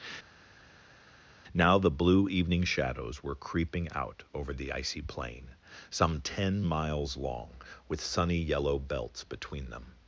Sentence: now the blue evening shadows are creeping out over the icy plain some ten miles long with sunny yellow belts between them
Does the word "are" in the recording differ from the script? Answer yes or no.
yes